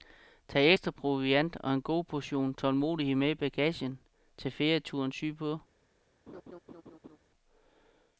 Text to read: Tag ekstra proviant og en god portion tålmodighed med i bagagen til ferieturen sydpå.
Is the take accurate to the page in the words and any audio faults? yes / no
no